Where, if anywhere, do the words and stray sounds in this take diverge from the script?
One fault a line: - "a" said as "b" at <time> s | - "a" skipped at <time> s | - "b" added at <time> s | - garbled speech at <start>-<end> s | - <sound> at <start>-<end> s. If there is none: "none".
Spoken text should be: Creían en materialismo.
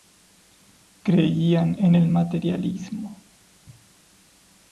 - "el" added at 1.9 s